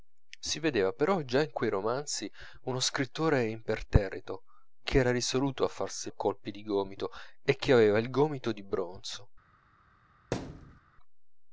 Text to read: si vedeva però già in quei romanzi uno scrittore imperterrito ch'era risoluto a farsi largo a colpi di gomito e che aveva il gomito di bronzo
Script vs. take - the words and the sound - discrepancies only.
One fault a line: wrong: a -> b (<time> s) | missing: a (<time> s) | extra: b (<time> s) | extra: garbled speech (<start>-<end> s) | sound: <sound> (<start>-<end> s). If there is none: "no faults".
missing: largo (6.1 s)
sound: thud (10.3-10.8 s)